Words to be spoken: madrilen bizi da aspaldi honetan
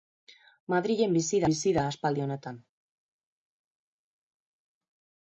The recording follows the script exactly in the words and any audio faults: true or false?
false